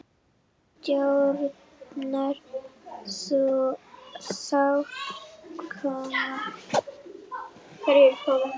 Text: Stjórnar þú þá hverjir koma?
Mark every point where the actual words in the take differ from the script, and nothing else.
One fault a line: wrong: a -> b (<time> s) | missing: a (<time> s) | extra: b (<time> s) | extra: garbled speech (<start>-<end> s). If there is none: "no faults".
missing: hverjir (4.6 s)